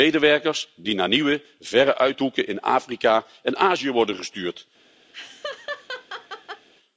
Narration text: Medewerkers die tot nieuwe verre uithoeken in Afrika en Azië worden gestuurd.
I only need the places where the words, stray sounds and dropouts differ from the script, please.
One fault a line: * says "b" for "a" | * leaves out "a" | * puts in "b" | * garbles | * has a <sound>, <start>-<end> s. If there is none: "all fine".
* says "naar" for "tot"
* has a laugh, 5.1-6.7 s